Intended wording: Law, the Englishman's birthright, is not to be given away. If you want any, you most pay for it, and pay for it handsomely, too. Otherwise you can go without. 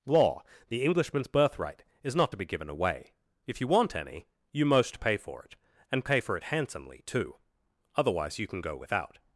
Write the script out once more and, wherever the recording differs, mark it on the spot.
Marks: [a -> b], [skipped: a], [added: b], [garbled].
Law, the Englishman's birthright, is not to be given away. If you want any, you most pay for it, and pay for it handsomely, too. Otherwise you can go without.